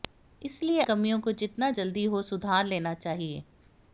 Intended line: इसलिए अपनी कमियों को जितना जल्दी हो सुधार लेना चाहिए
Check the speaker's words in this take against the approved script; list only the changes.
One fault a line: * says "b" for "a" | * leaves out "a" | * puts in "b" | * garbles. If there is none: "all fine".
* leaves out "अपनी"